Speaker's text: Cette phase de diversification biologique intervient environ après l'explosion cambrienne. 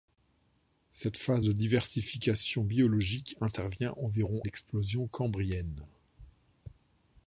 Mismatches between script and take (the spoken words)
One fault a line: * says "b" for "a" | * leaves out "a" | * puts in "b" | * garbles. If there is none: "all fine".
* leaves out "après"